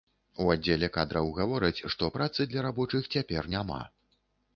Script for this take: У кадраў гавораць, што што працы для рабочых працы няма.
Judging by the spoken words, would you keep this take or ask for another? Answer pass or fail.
fail